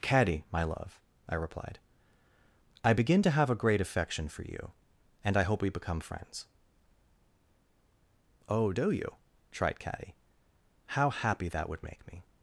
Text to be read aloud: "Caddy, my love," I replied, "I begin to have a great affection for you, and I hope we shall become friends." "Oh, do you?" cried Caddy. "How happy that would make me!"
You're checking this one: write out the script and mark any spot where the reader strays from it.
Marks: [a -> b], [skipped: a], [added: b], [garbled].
"Caddy, my love," I replied, "I begin to have a great affection for you, and I hope we [skipped: shall] become friends." "Oh, do you?" [cried -> tried] Caddy. "How happy that would make me!"